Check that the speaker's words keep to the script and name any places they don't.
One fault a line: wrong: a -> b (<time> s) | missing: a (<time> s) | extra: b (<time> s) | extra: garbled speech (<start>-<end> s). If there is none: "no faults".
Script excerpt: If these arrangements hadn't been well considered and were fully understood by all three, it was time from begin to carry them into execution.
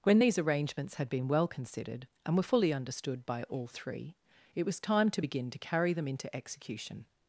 wrong: If -> When (0.0 s)
wrong: hadn't -> had (0.9 s)
wrong: from -> to (5.1 s)